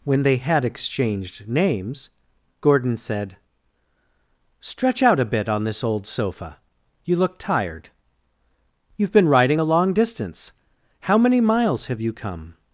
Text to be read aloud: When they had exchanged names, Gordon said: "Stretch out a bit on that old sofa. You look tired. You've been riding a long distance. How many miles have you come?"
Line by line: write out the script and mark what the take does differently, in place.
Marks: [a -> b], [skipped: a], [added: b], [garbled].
When they had exchanged names, Gordon said: "Stretch out a bit on [that -> this] old sofa. You look tired. You've been riding a long distance. How many miles have you come?"